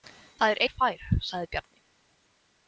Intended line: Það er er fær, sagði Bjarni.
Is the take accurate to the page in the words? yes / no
yes